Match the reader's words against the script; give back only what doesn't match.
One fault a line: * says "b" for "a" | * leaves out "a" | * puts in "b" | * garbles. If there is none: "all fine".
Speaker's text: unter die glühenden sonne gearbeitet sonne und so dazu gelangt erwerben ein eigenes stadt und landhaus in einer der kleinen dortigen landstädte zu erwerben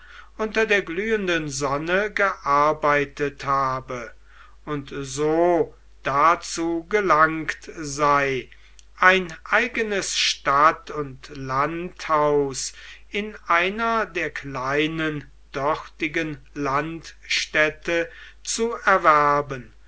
* says "der" for "die"
* says "habe" for "sonne"
* says "sei" for "erwerben"